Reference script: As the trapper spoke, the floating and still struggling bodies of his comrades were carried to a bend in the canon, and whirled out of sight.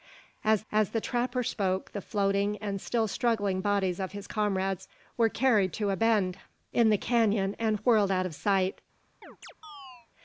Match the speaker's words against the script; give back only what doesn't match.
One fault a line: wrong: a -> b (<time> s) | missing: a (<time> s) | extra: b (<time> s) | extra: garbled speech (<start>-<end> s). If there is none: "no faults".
extra: as (0.7 s)